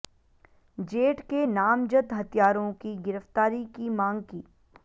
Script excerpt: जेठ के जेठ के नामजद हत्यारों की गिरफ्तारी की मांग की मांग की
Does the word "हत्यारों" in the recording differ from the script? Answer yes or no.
no